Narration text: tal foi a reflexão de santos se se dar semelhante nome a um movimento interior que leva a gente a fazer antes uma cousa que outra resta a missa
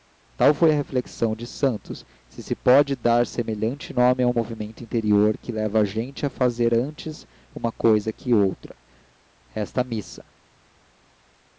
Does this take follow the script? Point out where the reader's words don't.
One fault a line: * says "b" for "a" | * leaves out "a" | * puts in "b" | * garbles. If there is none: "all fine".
* puts in "pode"